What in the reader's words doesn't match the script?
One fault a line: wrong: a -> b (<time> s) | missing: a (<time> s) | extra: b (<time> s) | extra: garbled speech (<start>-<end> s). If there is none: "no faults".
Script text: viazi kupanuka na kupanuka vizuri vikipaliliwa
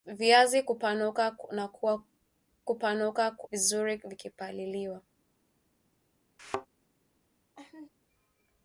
no faults